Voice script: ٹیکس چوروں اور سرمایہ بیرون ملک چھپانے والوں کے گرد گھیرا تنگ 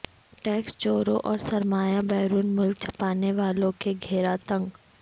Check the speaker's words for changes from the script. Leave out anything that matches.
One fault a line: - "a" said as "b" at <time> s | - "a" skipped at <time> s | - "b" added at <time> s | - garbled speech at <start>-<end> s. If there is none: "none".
- "گرد" skipped at 3.9 s